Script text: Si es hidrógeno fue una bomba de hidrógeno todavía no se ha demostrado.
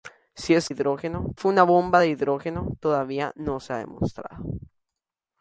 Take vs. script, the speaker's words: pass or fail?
pass